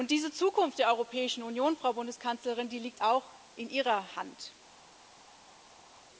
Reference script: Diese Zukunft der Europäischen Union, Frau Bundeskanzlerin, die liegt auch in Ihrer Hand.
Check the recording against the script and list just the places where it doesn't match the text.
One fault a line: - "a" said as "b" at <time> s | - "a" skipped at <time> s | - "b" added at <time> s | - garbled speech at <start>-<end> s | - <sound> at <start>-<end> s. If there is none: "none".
none